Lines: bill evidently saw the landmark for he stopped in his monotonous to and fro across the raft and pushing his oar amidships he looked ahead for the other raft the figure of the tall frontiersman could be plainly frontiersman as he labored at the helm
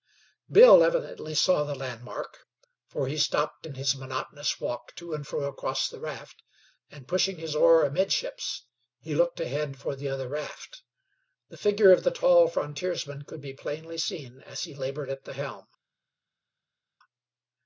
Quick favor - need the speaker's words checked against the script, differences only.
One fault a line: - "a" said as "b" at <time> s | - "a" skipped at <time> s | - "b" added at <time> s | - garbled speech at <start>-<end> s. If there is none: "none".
- "walk" added at 4.6 s
- "frontiersman" said as "seen" at 14.0 s